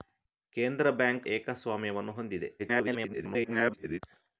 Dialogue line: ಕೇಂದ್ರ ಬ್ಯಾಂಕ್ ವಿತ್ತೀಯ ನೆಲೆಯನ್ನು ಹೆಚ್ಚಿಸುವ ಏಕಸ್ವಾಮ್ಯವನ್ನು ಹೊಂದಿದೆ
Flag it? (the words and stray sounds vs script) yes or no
yes